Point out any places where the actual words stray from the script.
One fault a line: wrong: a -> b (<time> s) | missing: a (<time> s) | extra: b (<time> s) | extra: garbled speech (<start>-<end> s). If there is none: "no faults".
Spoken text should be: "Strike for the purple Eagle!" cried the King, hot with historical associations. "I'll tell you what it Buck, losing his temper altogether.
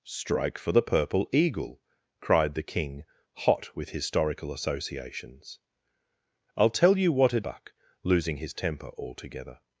no faults